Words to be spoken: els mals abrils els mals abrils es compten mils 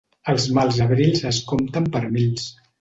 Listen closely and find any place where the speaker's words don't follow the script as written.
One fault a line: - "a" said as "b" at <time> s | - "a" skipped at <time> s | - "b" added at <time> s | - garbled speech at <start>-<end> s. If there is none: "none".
- "els mals abrils" skipped at 1.3 s
- "per" added at 2.0 s